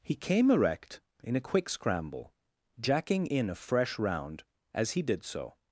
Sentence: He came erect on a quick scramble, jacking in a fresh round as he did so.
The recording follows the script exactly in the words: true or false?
false